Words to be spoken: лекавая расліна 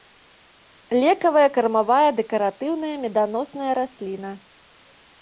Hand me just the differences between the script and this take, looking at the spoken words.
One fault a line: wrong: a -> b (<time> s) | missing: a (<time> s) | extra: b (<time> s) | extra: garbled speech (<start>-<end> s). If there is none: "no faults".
extra: кармавая дэкаратыўная меданосная (1.6 s)